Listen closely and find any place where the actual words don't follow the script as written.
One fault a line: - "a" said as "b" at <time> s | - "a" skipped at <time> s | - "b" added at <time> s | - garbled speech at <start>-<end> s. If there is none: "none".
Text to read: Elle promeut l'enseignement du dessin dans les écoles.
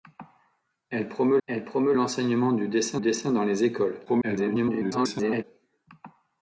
- "elle promeut" added at 1.5 s
- "dessin" added at 3.0 s
- garbled speech at 4.1-5.4 s